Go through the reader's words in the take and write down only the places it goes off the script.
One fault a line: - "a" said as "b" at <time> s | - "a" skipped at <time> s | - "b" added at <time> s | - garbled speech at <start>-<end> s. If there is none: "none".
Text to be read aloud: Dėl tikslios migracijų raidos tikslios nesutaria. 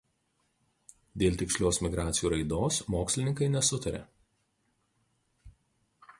- "tikslios" said as "mokslininkai" at 2.9 s